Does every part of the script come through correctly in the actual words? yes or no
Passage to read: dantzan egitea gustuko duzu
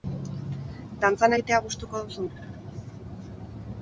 yes